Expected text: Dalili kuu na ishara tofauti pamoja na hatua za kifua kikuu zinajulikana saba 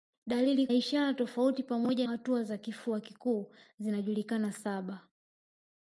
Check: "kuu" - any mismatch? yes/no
yes